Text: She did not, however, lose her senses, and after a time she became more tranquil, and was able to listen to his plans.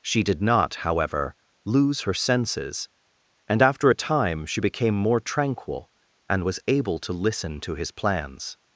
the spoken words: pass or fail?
pass